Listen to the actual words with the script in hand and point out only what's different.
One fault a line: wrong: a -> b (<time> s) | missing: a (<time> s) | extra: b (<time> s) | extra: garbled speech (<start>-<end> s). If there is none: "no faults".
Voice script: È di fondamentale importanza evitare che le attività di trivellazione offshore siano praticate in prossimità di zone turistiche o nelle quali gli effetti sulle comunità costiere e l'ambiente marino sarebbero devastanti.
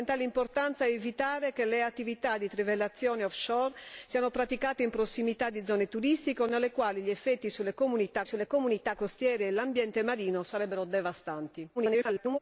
extra: sulle comunità (8.3 s)
extra: garbled speech (11.8-12.4 s)